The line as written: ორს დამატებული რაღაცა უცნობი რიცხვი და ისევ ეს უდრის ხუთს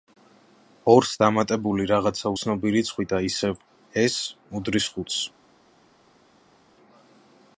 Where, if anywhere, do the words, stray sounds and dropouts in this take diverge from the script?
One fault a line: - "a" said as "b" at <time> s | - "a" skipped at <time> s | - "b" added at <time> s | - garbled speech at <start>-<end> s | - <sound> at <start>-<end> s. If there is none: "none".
none